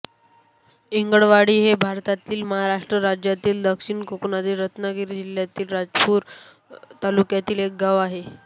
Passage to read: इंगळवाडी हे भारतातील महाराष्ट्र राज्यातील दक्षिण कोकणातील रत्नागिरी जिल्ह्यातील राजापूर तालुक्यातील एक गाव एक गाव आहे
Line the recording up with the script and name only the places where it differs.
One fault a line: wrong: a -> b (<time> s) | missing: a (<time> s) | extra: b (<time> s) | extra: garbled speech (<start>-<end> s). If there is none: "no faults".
missing: एक गाव (8.0 s)